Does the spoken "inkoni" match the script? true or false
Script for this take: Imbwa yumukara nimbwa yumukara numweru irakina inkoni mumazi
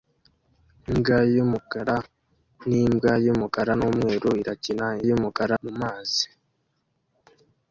false